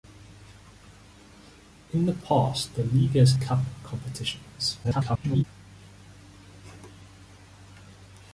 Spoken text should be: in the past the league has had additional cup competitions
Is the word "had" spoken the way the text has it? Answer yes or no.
no